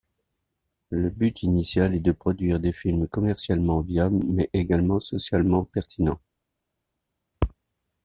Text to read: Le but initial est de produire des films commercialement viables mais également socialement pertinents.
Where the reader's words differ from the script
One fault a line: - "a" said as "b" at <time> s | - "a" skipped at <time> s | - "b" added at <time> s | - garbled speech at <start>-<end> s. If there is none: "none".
none